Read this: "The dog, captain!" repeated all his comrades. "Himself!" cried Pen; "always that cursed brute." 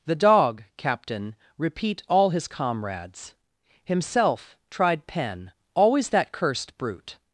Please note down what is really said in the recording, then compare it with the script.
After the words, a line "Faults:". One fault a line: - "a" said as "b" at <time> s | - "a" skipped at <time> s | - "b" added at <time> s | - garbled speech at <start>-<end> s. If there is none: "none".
"The dog, captain!" repeat all his comrades. "Himself!" tried Pen; "always that cursed brute."
Faults:
- "repeated" said as "repeat" at 1.6 s
- "cried" said as "tried" at 4.7 s